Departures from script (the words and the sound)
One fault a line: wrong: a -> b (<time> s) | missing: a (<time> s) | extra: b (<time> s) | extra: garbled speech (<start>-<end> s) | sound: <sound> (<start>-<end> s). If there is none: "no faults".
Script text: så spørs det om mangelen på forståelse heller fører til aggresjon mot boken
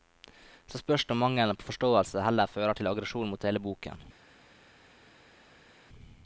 extra: hele (3.5 s)